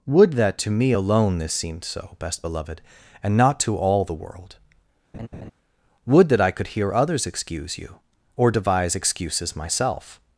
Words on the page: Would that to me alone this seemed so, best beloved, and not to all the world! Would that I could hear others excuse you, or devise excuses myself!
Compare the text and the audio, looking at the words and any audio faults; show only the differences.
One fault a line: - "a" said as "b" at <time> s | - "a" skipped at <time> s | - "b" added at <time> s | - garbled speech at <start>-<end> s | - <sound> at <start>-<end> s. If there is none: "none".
- laugh at 5.1-5.5 s